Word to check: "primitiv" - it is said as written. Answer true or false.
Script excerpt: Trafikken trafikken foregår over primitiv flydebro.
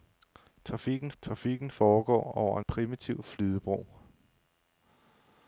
true